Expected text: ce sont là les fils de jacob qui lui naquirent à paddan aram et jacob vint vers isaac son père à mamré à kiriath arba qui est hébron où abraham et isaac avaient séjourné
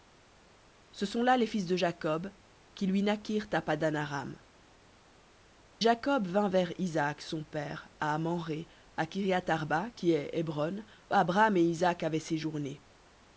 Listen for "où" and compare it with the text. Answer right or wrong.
wrong